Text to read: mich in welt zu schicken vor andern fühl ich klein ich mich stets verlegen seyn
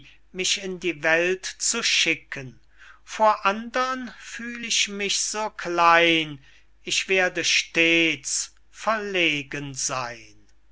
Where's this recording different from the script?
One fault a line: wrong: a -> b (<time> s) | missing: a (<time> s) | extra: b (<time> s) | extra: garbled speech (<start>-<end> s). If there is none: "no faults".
extra: die (0.8 s)
extra: mich so (4.9 s)
wrong: mich -> werde (7.1 s)